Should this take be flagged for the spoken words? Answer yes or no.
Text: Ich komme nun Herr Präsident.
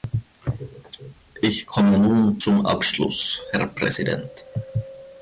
yes